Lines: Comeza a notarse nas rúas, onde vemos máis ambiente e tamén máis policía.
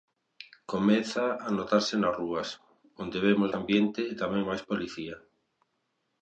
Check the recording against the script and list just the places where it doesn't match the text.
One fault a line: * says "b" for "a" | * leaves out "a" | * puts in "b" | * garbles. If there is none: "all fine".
* leaves out "máis"